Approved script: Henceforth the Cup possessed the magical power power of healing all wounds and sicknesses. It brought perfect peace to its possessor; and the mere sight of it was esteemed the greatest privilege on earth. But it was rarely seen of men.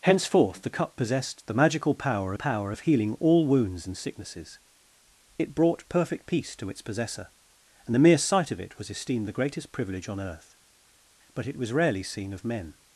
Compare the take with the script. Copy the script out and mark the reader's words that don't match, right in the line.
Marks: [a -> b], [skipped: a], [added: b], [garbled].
Henceforth the Cup possessed the magical power power of healing all wounds and sicknesses. It brought perfect peace to its possessor; and the mere sight of it was esteemed the greatest privilege on earth. But it was rarely seen of men.